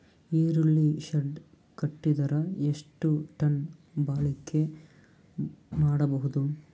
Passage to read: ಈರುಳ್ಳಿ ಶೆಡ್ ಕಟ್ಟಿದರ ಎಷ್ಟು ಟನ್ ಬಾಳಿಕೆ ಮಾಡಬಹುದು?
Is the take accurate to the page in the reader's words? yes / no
yes